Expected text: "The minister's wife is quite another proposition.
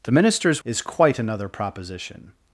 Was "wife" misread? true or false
true